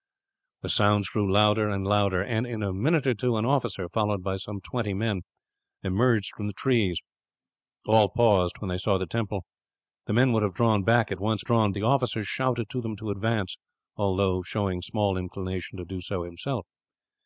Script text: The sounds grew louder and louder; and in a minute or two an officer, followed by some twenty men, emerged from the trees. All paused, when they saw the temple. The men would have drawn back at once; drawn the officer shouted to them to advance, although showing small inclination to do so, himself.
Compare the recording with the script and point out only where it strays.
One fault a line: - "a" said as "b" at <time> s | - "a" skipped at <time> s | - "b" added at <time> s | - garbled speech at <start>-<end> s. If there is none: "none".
none